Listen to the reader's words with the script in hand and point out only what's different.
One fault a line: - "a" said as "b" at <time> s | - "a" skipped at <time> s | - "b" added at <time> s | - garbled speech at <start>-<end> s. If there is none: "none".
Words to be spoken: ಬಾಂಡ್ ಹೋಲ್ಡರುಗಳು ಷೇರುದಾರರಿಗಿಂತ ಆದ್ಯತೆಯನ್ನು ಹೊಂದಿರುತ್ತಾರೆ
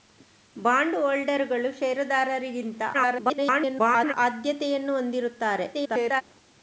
- garbled speech at 2.9-4.1 s
- garbled speech at 5.7-6.2 s